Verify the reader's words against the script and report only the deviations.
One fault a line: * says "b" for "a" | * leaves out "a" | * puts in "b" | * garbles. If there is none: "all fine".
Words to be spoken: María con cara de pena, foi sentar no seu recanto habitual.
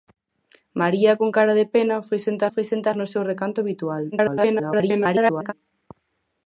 * puts in "foi sentar"
* garbles